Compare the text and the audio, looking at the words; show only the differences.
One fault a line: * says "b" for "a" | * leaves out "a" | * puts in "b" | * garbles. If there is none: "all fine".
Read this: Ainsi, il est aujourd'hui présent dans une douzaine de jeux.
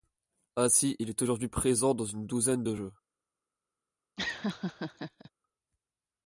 all fine